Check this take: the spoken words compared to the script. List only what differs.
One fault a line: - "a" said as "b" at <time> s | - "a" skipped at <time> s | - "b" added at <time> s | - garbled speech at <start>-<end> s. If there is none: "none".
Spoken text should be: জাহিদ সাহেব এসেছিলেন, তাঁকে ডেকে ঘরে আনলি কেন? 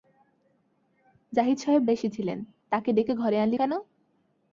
none